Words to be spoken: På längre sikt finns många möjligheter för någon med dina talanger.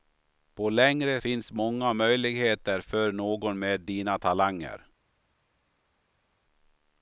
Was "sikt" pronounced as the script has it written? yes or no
no